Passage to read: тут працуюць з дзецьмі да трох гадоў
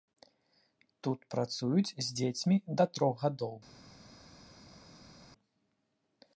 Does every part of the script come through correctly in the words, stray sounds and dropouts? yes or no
yes